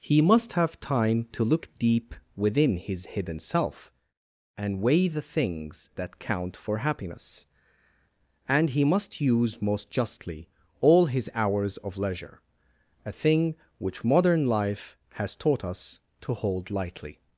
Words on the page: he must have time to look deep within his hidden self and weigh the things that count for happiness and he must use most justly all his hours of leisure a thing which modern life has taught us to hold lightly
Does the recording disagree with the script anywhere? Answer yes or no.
no